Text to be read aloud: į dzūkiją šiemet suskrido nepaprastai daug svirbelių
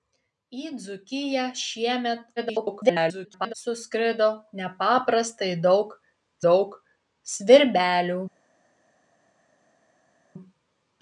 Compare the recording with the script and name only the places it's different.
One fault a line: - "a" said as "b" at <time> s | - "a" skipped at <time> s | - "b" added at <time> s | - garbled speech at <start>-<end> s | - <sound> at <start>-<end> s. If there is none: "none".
- garbled speech at 2.4-3.5 s
- "daug" added at 6.5 s